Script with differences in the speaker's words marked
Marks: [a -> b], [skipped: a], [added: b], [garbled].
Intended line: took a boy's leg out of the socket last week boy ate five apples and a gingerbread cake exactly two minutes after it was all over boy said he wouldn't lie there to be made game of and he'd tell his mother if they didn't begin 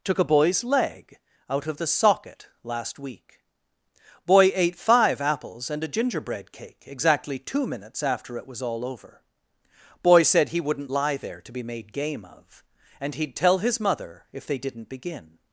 took a boy's leg out of the socket last week boy ate five apples and a gingerbread cake exactly two minutes after it was all over boy said he wouldn't lie there to be made game of and he'd tell his mother if they didn't begin